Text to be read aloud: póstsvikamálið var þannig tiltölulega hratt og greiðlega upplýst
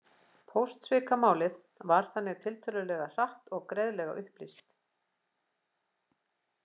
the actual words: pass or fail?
pass